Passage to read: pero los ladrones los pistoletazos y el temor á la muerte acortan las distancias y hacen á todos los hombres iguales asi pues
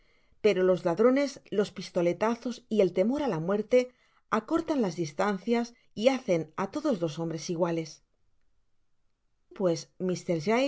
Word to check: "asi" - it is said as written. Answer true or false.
false